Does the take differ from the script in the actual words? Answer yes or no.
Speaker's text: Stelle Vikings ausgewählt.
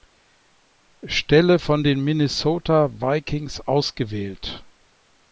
yes